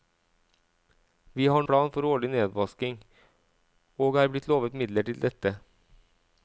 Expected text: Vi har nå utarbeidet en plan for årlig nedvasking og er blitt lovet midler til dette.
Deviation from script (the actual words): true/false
true